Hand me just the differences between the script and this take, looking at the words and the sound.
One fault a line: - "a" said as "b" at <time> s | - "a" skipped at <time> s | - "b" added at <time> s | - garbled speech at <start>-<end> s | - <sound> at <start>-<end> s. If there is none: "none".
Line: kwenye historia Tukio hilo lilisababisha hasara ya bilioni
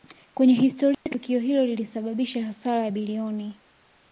- dropout at 0.9-1.1 s